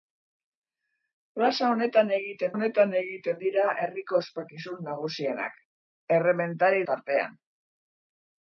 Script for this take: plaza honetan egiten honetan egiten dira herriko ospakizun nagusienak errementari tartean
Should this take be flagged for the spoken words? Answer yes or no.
no